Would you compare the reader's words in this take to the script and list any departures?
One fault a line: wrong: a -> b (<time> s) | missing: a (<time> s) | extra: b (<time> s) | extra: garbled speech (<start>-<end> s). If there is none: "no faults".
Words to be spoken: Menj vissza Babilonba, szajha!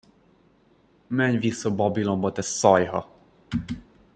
extra: te (2.3 s)